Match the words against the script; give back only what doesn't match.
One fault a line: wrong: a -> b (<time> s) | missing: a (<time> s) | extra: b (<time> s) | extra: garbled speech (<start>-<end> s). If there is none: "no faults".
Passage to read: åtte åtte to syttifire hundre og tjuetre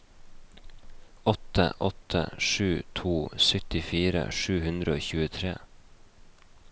extra: sju (2.4 s)
extra: sju (4.4 s)